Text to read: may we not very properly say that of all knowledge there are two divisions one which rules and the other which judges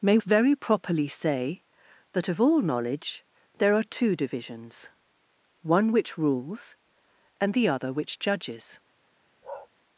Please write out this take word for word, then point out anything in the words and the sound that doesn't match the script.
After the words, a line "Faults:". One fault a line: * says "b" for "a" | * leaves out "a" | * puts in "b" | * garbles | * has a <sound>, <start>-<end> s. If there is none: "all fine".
may very properly say that of all knowledge there are two divisions one which rules and the other which judges
Faults:
* leaves out "we not"
* has a bark, 9.4-9.7 s